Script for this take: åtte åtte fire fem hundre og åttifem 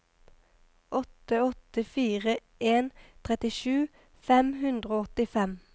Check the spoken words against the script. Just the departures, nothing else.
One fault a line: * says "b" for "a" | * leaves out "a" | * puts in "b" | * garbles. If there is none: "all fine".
* puts in "en trettisju"